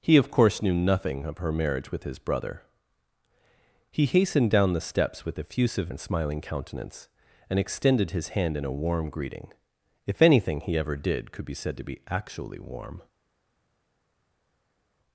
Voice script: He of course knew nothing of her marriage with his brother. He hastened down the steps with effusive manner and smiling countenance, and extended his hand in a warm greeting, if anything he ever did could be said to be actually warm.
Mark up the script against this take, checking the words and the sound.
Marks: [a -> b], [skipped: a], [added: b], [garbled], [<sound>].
He of course knew nothing of her marriage with his brother. He hastened down the steps with effusive [skipped: manner] and smiling countenance, and extended his hand in a warm greeting, if anything he ever did could be said to be actually warm.